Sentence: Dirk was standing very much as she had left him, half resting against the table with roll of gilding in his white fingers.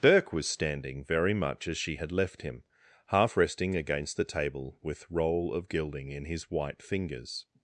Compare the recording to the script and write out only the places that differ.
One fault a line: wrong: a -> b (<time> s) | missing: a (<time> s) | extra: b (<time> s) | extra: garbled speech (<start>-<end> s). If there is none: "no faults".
no faults